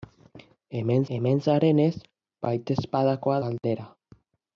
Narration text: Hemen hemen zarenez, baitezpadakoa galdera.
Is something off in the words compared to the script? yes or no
no